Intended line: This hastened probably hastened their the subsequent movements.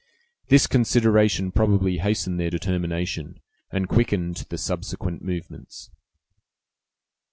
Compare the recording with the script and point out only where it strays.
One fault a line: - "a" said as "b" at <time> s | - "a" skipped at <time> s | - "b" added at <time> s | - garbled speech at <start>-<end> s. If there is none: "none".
- "hastened" said as "consideration" at 0.7 s
- "determination and quickened" added at 2.5 s